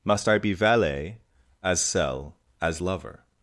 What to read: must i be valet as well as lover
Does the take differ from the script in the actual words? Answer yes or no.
yes